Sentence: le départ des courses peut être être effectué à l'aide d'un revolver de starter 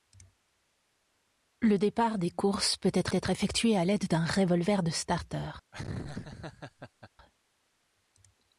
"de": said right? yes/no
yes